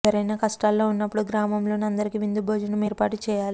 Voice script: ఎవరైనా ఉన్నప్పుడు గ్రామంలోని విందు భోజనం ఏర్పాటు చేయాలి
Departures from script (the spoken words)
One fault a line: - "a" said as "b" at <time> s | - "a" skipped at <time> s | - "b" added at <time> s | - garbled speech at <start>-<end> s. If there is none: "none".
- "కష్టాల్లో" added at 0.4 s
- "అందరికీ" added at 1.9 s